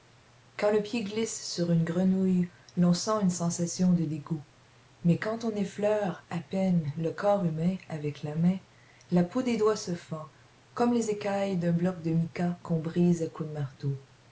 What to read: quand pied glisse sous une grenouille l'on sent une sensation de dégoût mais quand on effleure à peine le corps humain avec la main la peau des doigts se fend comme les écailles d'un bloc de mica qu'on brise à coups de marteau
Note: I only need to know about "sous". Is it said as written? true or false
false